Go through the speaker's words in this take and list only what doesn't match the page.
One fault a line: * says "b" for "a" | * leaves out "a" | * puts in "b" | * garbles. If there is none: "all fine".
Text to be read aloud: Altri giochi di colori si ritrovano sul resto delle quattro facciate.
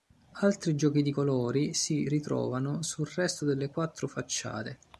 all fine